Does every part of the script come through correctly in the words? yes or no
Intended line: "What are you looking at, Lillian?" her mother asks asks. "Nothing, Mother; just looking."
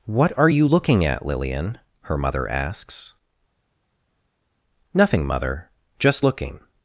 no